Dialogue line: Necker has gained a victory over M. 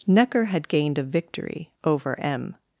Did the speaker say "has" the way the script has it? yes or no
no